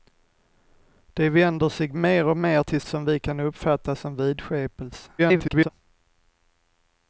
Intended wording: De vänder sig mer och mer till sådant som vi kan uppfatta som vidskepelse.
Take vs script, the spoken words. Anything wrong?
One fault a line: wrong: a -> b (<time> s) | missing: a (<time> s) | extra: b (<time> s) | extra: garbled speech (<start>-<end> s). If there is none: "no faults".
missing: sådant (2.8 s)
extra: garbled speech (5.2-5.7 s)